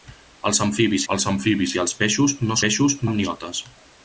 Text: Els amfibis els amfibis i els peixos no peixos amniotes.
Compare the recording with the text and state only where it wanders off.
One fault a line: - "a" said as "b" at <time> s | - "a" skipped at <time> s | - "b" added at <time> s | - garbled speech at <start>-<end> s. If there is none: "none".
none